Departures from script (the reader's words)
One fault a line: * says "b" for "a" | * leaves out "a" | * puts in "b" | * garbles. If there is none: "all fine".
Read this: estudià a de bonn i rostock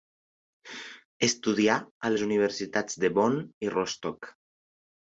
* puts in "les universitats"